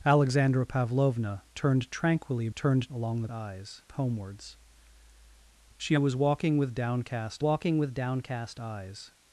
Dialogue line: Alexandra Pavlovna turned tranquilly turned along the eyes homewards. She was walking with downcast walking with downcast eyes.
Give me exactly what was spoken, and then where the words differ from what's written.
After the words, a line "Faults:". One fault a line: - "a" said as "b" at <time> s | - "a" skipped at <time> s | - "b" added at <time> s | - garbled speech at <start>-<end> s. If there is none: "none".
Alexandra Pavlovna turned tranquilly turned along the eyes homewards. She was walking with downcast walking with downcast eyes.
Faults:
none